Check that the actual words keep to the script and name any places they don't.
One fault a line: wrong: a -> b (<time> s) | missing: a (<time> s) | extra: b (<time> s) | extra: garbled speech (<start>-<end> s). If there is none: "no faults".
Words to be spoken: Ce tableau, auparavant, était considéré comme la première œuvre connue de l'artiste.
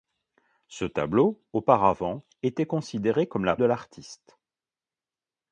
missing: première œuvre connue (3.5 s)